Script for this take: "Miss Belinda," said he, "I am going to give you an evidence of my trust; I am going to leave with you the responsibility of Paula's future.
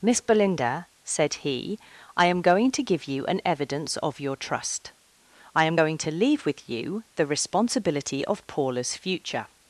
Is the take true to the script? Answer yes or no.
no